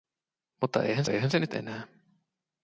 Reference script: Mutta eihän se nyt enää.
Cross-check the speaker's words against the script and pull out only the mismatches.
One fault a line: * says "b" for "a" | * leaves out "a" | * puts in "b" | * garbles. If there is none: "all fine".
* puts in "eihän"